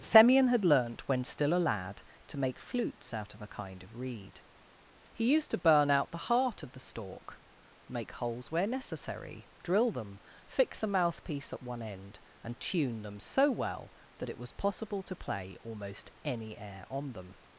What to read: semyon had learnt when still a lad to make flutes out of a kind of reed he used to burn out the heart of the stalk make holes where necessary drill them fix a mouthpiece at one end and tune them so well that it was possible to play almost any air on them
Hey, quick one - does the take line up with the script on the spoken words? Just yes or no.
yes